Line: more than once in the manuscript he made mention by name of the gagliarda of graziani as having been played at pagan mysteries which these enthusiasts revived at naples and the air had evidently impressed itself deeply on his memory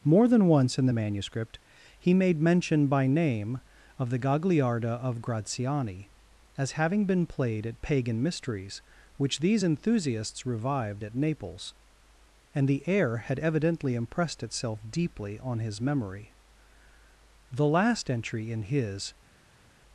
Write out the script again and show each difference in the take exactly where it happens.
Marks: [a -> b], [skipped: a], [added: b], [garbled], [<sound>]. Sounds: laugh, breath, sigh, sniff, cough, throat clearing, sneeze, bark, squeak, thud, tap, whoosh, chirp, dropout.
more than once in the manuscript he made mention by name of the gagliarda of graziani as having been played at pagan mysteries which these enthusiasts revived at naples and the air had evidently impressed itself deeply on his memory [added: the last entry in his]